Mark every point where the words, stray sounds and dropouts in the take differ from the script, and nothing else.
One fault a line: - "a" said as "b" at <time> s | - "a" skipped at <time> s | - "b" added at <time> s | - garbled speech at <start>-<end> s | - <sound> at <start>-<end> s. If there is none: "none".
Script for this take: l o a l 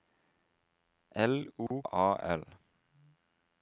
- dropout at 1.7-1.7 s